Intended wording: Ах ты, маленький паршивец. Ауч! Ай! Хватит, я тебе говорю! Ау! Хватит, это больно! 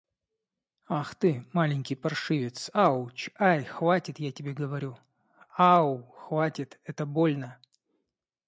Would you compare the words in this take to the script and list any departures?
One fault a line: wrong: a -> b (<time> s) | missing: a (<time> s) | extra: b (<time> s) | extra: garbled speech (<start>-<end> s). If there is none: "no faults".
no faults